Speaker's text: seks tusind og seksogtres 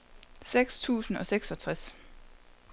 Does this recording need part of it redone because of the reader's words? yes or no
no